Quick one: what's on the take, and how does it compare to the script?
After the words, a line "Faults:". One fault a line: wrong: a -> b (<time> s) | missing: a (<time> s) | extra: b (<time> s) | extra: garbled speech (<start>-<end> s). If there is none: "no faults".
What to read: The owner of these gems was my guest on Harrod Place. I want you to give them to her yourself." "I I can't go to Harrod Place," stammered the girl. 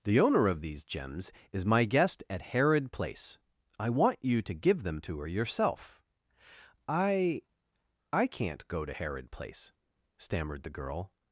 The owner of these gems is my guest at Harrod Place. I want you to give them to her yourself." "I I can't go to Harrod Place," stammered the girl.
Faults:
wrong: was -> is (1.5 s)
wrong: on -> at (2.3 s)